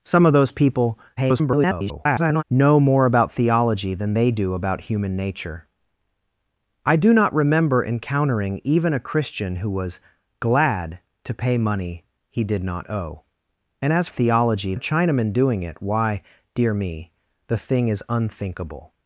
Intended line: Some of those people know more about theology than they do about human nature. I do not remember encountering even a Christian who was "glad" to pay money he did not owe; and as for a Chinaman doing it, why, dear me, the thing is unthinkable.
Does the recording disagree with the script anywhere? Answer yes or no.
yes